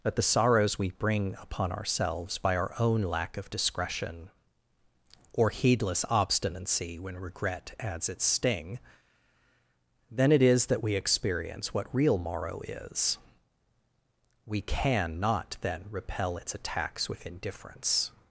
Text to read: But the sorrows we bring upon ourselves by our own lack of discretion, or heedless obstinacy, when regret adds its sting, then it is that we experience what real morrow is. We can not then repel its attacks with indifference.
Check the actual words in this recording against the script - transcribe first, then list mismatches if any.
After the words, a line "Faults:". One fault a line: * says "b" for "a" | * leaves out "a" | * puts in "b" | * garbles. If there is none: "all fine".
But the sorrows we bring upon ourselves by our own lack of discretion, or heedless obstinacy, when regret adds its sting, then it is that we experience what real morrow is. We can not then repel its attacks with indifference.
Faults:
all fine